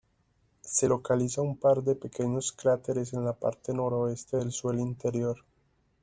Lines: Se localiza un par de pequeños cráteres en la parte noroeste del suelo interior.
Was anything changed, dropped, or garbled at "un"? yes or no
no